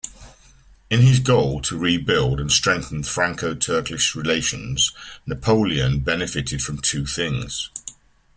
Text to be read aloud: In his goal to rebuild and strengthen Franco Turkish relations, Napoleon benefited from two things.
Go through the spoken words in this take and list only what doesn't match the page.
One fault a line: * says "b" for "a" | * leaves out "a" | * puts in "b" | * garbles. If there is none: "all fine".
all fine